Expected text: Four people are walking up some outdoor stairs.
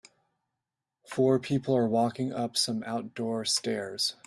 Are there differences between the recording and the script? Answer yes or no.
no